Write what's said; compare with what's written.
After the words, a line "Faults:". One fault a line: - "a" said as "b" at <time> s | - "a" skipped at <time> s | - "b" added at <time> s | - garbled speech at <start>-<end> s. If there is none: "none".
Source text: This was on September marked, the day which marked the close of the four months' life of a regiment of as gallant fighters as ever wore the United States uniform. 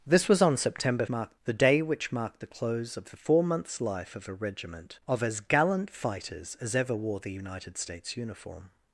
This was on September marked, the day which marked the close of the four months' life of a regiment of as gallant fighters as ever wore the United States uniform.
Faults:
none